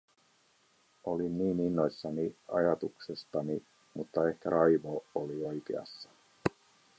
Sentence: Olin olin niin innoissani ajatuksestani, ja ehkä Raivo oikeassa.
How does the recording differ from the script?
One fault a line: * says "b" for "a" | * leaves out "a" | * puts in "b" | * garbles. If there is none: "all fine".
* leaves out "olin"
* says "mutta" for "ja"
* puts in "oli"